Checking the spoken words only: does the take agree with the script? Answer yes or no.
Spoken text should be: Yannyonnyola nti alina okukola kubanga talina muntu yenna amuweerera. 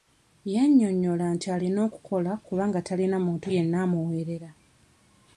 yes